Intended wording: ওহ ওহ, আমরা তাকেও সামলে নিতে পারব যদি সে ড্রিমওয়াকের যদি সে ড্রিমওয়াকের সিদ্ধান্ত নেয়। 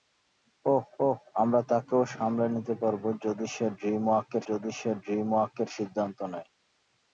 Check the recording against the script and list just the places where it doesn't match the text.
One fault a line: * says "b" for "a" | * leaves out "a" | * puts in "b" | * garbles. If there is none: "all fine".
all fine